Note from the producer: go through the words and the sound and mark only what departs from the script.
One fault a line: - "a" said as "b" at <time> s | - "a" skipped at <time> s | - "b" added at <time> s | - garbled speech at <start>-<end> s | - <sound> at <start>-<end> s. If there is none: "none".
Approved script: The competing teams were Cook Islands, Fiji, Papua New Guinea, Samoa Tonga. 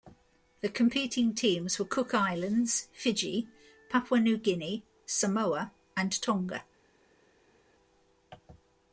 - "and" added at 5.9 s